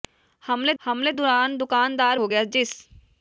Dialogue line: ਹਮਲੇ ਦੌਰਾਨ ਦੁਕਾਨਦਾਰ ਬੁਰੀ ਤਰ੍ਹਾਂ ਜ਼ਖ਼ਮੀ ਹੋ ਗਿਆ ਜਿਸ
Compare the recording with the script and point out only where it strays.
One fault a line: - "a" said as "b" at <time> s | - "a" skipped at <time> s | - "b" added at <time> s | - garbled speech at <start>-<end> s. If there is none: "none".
- "ਹਮਲੇ" added at 0.8 s
- "ਬੁਰੀ ਤਰ੍ਹਾਂ ਜ਼ਖ਼ਮੀ" skipped at 2.2 s